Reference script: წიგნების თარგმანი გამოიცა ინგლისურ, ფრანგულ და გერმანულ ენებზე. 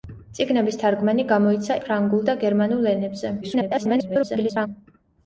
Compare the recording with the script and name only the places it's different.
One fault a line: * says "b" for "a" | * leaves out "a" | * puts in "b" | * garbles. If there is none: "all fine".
* leaves out "ინგლისურ"
* garbles